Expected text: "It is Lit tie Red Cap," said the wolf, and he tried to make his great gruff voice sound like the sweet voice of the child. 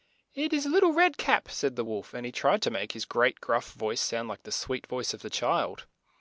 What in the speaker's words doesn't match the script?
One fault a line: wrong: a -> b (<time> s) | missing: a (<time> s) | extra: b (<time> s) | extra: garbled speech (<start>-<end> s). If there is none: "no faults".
no faults